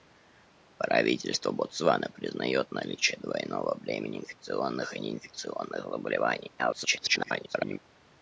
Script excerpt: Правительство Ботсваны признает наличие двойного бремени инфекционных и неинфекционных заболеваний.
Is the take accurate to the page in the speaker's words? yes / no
no